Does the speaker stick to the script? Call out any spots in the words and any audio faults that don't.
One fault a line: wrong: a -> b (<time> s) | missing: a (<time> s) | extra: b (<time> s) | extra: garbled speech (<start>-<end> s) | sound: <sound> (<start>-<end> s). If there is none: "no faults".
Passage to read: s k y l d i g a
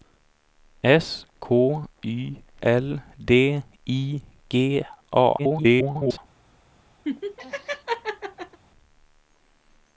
extra: garbled speech (5.4-6.2 s)
sound: laugh (7.0-8.6 s)